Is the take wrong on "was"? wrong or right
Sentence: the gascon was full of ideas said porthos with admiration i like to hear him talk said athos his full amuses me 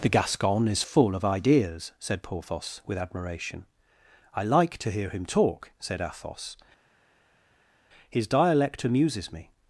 wrong